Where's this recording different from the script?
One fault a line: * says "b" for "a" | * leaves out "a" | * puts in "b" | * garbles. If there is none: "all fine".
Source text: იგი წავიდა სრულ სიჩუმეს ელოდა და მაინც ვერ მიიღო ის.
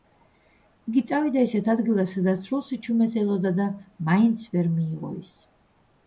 * puts in "ისეთ ადგილას სადაც"